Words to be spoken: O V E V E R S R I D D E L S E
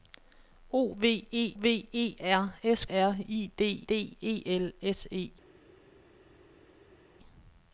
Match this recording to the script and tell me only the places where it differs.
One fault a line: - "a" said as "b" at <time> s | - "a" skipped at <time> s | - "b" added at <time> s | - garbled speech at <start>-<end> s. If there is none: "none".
none